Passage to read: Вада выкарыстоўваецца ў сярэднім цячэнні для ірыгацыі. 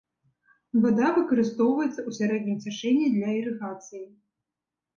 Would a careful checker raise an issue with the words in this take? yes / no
no